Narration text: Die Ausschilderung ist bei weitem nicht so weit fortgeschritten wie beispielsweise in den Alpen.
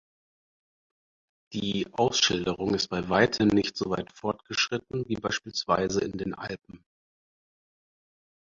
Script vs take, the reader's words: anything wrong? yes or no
no